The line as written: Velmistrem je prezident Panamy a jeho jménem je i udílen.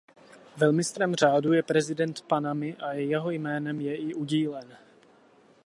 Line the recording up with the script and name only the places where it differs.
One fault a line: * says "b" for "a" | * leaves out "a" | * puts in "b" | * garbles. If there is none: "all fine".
* puts in "řádu"